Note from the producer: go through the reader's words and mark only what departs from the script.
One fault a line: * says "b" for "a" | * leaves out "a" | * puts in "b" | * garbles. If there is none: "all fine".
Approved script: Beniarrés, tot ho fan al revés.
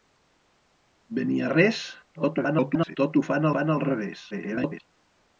* garbles
* puts in "fan"
* garbles